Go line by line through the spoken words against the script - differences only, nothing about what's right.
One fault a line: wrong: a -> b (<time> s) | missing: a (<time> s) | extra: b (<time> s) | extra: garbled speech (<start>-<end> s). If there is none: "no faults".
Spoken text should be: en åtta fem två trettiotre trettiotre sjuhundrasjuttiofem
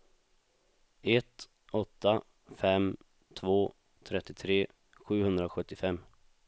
wrong: en -> ett (1.0 s)
missing: trettiotre (4.7 s)